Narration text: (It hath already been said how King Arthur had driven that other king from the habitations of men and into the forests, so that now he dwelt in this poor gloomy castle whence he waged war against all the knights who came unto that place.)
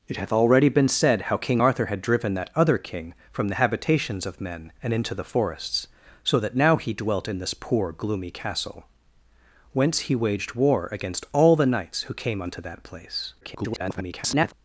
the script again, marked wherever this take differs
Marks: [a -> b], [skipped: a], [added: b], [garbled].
(It hath already been said how King Arthur had driven that other king from the habitations of men and into the forests, so that now he dwelt in this poor gloomy castle whence he waged war against all the knights who came unto that place.) [garbled]